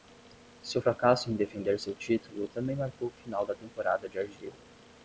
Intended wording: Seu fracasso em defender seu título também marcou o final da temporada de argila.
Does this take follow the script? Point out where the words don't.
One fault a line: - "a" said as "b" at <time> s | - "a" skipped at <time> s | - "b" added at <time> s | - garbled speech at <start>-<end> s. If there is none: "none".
none